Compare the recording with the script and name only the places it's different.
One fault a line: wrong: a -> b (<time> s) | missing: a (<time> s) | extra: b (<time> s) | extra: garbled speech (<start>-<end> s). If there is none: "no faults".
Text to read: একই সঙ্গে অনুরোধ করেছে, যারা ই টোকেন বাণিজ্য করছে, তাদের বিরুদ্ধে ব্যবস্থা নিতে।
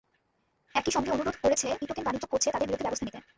missing: যারা (1.7 s)